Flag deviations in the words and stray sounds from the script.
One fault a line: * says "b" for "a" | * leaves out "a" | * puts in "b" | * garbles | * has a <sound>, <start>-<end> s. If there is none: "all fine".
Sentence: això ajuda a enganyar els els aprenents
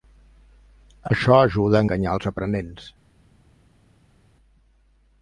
* leaves out "els"